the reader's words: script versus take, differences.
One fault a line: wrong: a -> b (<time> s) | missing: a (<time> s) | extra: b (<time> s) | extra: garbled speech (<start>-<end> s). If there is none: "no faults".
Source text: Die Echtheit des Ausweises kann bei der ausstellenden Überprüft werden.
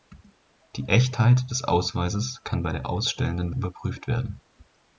no faults